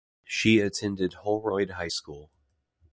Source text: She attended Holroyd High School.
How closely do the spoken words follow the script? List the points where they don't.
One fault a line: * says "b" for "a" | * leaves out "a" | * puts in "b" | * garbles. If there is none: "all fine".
all fine